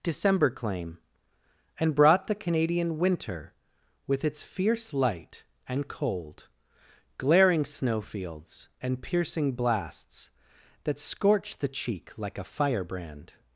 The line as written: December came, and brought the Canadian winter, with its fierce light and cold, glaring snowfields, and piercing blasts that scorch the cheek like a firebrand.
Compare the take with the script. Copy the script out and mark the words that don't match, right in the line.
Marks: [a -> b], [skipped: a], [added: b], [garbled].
December [came, -> claim] and brought the Canadian winter, with its fierce light and cold, glaring snowfields, and piercing blasts that scorch the cheek like a firebrand.